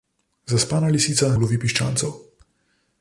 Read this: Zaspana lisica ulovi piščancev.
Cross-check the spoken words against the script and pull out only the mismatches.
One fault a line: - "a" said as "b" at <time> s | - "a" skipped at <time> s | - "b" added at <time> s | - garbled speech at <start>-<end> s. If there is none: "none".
none